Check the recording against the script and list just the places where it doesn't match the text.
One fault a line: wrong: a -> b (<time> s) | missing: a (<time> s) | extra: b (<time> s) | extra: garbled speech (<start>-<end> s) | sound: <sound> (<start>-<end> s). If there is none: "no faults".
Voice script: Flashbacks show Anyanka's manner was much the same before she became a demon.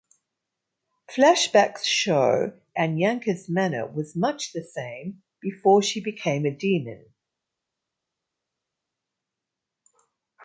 no faults